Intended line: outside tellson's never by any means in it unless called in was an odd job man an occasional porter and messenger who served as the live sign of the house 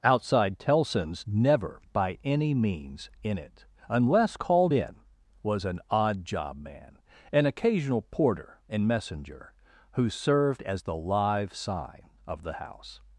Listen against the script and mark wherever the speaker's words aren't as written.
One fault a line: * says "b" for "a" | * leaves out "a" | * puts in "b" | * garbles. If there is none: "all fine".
all fine